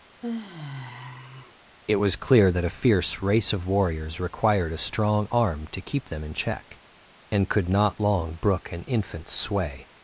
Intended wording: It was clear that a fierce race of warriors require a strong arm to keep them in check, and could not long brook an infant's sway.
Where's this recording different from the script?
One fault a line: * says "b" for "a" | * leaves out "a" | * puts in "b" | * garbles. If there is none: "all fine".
* says "required" for "require"